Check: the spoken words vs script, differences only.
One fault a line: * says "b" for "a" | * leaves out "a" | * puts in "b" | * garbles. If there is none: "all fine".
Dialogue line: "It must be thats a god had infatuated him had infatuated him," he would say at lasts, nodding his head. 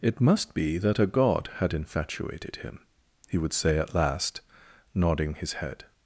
* says "that" for "thats"
* leaves out "had infatuated him"
* says "last" for "lasts"